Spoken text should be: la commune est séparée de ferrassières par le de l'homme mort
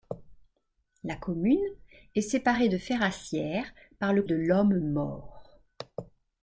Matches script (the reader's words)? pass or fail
pass